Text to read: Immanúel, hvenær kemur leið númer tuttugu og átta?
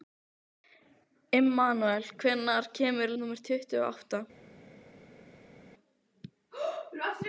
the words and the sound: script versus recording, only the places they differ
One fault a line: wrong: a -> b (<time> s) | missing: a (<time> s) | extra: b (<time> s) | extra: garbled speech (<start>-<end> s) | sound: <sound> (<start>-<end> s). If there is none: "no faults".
missing: leið (3.1 s)